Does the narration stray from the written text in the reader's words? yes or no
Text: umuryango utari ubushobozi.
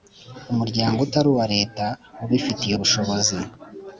yes